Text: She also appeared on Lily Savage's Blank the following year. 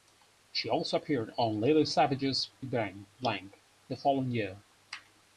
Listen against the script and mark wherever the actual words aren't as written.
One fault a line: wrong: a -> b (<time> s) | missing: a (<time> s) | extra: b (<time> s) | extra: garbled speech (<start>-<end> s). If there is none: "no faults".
no faults